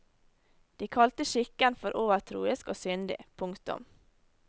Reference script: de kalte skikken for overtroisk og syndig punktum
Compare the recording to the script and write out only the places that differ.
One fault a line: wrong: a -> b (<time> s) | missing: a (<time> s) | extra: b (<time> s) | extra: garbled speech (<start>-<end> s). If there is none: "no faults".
no faults